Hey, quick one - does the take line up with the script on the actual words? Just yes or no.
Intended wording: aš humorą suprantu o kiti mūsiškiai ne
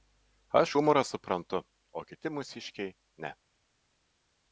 yes